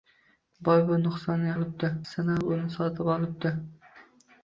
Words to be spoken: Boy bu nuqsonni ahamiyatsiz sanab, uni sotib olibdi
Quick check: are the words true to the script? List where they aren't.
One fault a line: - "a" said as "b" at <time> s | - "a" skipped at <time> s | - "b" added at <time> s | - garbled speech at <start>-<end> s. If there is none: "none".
- "ahamiyatsiz" said as "olibdi" at 1.6 s